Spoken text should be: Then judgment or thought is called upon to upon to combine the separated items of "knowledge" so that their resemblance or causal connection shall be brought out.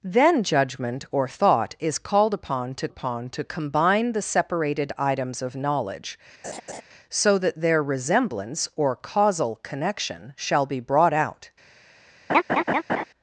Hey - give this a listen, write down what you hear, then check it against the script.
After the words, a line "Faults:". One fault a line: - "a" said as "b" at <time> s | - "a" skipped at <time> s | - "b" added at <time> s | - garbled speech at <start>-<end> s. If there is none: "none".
Then judgment or thought is called upon to upon to combine the separated items of "knowledge" so that their resemblance or causal connection shall be brought out.
Faults:
none